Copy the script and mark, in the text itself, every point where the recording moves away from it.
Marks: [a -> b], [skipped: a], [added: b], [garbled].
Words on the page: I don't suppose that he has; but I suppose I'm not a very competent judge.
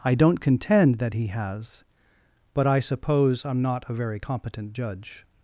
I don't [suppose -> contend] that he has; but I suppose I'm not a very competent judge.